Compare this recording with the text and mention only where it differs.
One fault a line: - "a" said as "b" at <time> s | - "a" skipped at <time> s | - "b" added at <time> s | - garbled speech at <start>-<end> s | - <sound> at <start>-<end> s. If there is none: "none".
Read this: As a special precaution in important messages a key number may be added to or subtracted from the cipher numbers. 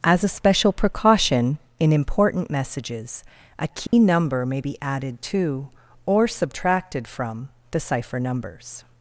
- dropout at 3.9-3.9 s